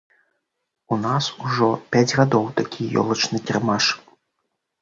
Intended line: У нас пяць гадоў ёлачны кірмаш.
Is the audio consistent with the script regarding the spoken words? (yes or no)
no